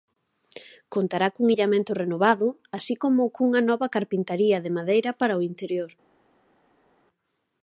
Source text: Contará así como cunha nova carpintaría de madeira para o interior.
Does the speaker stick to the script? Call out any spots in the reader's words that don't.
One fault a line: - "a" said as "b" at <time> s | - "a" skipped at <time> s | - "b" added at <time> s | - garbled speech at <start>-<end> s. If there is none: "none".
- "cun illamento renovado" added at 1.4 s